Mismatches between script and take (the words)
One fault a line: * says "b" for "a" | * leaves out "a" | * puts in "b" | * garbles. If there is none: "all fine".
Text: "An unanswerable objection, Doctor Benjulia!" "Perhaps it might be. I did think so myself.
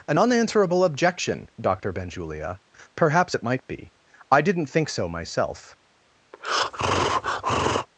* says "didn't" for "did"